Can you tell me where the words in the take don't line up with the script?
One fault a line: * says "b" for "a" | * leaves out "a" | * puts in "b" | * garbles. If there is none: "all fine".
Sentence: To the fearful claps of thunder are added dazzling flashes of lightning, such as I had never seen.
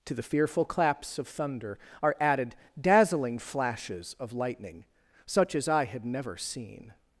all fine